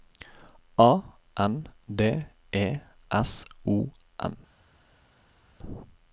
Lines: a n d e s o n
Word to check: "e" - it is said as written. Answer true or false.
true